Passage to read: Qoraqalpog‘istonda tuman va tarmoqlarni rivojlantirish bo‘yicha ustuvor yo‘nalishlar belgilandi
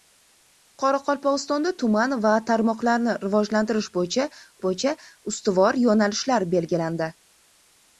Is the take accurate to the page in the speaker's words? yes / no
no